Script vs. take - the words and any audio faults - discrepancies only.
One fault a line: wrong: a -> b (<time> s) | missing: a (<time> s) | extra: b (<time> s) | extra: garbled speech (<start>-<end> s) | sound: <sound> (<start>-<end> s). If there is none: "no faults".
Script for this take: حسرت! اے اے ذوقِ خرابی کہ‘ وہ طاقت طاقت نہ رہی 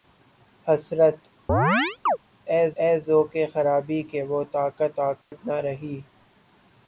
sound: chirp (1.5-2.2 s)
sound: dropout (5.2-5.3 s)